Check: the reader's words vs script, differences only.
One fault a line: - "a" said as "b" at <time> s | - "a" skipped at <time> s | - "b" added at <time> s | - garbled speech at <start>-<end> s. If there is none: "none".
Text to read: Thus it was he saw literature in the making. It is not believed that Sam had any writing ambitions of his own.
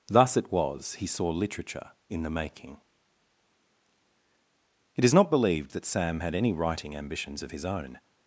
none